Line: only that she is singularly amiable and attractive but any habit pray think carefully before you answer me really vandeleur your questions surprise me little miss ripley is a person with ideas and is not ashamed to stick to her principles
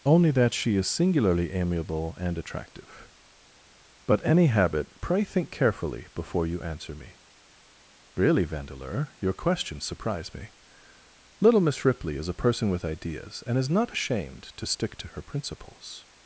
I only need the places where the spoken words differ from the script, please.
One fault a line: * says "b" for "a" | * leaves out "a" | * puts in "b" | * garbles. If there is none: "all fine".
all fine